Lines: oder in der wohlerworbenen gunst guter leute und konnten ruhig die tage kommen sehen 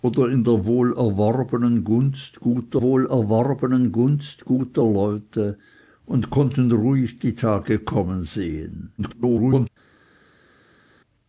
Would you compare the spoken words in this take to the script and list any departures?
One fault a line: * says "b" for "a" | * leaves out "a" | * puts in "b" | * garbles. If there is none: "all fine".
* puts in "wohlerworbenen gunst guter"
* garbles